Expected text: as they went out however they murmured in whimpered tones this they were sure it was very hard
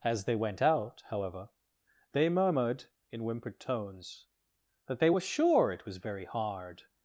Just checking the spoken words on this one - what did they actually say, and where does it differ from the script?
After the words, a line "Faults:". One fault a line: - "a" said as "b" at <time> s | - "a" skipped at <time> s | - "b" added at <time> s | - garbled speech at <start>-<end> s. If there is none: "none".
as they went out however they murmured in whimpered tones that they were sure it was very hard
Faults:
- "this" said as "that" at 4.9 s